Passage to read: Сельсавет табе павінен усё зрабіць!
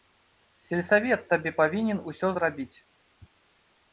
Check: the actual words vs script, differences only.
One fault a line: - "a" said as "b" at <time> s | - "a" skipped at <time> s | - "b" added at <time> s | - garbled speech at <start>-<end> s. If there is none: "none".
none